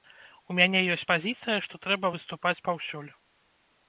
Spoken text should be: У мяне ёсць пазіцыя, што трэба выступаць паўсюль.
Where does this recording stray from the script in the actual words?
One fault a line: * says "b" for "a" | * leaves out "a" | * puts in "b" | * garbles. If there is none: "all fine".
all fine